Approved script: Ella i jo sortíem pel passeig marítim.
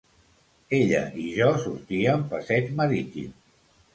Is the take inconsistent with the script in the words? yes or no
yes